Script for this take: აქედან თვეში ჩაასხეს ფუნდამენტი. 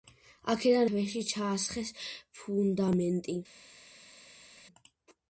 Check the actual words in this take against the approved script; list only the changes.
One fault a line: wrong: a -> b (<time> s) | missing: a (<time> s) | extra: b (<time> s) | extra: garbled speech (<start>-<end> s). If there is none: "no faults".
no faults